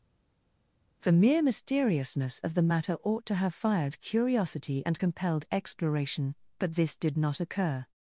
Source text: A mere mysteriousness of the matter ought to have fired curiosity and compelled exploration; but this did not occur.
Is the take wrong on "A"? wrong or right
wrong